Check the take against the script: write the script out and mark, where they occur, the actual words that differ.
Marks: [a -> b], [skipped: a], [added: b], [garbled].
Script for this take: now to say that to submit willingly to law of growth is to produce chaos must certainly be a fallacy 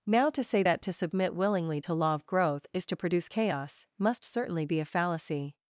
now to say that to submit willingly to law of growth is to produce chaos must certainly be a fallacy